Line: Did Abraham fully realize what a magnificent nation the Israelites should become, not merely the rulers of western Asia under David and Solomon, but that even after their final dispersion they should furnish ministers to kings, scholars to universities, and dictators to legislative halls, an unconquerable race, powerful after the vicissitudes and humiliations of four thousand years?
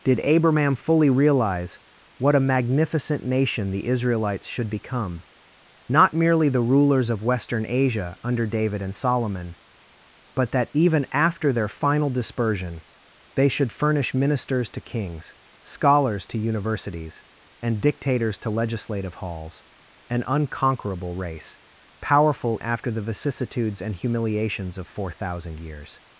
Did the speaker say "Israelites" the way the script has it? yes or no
yes